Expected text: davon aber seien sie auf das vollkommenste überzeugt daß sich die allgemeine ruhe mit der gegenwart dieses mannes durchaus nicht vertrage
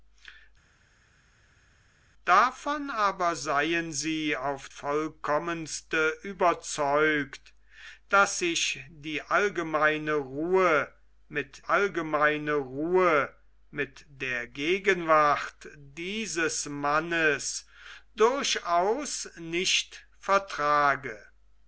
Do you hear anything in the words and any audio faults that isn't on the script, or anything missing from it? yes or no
yes